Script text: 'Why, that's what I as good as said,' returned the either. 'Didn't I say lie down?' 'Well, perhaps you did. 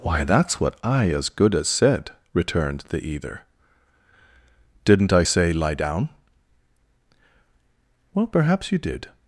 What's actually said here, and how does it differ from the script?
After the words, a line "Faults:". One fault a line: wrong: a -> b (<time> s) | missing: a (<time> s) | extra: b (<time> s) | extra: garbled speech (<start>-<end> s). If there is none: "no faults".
'Why, that's what I as good as said,' returned the either. 'Didn't I say lie down?' 'Well, perhaps you did.
Faults:
no faults